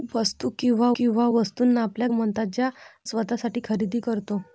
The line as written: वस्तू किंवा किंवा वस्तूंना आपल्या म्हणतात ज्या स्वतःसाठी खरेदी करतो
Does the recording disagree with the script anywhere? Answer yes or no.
no